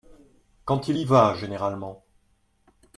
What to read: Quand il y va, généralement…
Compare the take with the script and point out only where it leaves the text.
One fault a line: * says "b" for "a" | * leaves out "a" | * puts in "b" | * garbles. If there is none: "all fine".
all fine